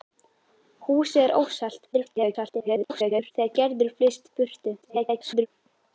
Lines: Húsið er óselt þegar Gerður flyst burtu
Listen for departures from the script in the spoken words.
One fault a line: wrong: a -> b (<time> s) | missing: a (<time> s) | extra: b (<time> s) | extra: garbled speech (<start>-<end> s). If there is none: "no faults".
extra: garbled speech (1.9-3.3 s)
extra: garbled speech (4.8-5.5 s)